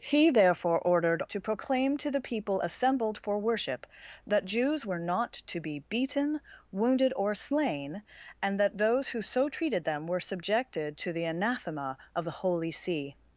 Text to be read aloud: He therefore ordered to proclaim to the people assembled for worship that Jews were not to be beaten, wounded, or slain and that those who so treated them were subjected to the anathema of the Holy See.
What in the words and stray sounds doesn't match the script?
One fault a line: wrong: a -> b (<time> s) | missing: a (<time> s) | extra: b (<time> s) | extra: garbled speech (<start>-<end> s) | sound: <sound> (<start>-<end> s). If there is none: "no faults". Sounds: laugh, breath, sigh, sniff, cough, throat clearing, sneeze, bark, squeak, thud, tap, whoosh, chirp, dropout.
no faults